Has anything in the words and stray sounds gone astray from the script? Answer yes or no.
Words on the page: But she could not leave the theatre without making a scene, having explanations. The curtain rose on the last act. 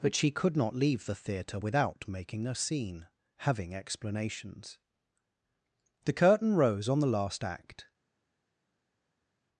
no